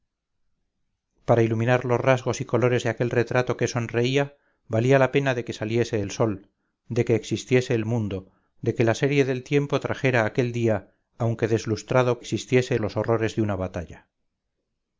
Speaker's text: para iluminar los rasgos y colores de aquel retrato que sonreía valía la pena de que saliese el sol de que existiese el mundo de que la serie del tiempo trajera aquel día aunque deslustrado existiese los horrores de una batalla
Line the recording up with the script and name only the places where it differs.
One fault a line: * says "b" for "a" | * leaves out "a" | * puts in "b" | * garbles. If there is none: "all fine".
all fine